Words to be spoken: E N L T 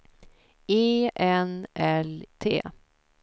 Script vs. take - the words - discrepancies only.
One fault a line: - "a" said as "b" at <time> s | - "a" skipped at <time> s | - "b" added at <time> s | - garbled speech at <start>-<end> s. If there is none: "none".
none